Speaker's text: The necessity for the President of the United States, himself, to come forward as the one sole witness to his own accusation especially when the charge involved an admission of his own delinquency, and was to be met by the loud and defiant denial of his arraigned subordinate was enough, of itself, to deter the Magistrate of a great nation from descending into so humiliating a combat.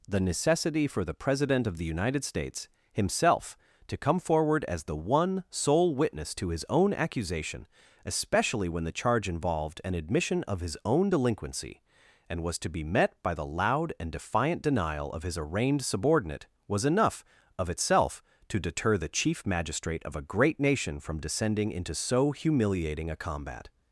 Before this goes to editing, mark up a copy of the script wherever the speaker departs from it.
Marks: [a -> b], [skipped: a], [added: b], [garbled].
The necessity for the President of the United States, himself, to come forward as the one sole witness to his own accusation especially when the charge involved an admission of his own delinquency, and was to be met by the loud and defiant denial of his arraigned subordinate was enough, of itself, to deter the [added: Chief] Magistrate of a great nation from descending into so humiliating a combat.